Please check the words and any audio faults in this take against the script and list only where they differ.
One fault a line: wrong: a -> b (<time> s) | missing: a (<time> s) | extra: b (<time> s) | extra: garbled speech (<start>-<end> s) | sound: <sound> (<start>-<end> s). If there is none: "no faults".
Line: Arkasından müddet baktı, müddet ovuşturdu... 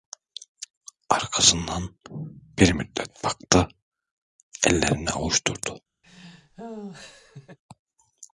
extra: bir (2.6 s)
wrong: müddet -> ellerini (4.7 s)
sound: laugh (6.0-7.6 s)